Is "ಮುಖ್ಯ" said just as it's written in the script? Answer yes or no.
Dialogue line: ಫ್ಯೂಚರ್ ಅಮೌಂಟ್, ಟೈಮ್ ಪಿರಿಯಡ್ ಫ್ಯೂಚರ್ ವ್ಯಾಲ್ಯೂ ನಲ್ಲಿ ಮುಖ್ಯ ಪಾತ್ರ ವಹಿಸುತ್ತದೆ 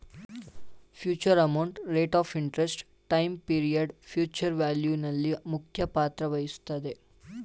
yes